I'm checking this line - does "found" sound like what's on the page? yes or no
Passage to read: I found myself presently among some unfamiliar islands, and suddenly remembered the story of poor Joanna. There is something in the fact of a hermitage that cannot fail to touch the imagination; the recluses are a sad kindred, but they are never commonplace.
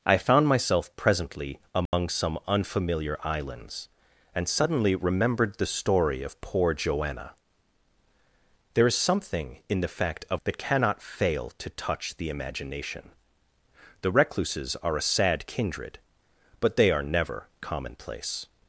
yes